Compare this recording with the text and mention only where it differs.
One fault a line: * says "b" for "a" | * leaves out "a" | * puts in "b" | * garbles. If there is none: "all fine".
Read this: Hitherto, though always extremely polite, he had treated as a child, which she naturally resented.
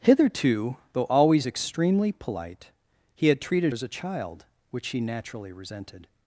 all fine